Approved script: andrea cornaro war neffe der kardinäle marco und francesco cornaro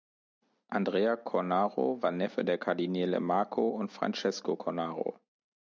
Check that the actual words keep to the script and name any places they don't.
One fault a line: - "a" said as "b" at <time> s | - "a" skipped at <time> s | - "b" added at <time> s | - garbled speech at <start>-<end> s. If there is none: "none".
none